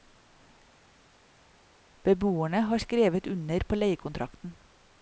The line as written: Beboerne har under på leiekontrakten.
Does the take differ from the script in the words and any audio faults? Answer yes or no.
yes